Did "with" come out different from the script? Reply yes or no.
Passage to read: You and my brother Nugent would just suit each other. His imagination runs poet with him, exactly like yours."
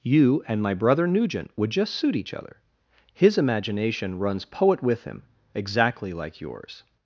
no